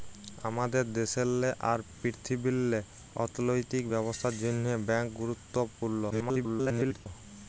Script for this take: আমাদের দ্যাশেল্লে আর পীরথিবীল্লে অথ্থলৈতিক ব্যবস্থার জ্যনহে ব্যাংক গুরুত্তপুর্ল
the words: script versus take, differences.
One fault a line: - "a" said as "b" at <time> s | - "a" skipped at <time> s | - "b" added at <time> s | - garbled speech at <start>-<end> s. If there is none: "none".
- garbled speech at 6.1-7.1 s